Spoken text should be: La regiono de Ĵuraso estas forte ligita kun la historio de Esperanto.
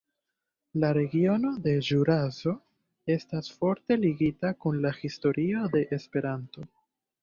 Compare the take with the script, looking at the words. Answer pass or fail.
pass